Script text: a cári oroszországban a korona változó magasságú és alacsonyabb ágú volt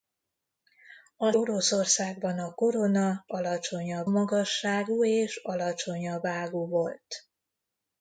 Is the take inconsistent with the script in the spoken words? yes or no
yes